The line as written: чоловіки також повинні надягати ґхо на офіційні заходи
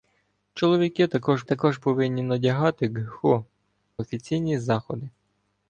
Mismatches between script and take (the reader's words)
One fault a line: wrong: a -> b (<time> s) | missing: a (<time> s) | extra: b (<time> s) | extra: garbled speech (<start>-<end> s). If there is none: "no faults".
extra: також (1.4 s)
missing: на (3.4 s)